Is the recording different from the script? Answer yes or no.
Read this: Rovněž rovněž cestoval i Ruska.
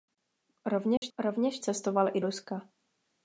no